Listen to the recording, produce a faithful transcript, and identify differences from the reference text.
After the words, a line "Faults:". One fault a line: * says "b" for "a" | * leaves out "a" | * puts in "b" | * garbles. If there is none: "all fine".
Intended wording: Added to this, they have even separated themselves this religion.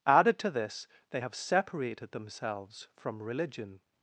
Added to this, they have separated themselves from religion.
Faults:
* leaves out "even"
* says "from" for "this"